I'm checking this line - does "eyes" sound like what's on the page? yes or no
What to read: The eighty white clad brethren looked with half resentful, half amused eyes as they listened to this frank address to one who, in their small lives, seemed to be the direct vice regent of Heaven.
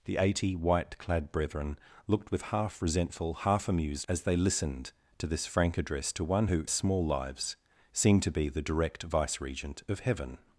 no